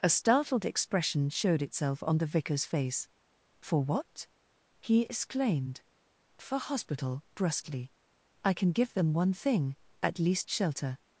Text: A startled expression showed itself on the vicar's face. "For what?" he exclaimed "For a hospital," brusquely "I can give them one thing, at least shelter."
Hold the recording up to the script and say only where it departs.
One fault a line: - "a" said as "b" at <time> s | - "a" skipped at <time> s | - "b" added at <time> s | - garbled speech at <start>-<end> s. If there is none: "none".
- "a" skipped at 6.6 s